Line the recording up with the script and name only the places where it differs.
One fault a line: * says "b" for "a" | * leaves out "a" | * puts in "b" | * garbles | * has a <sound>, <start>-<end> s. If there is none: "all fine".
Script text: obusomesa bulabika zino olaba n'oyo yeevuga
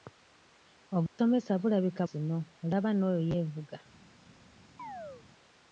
* has a dropout, 1.1-1.2 s
* has a chirp, 4.8-5.3 s